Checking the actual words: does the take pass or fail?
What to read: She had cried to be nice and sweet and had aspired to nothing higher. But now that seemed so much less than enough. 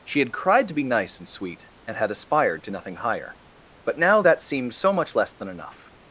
pass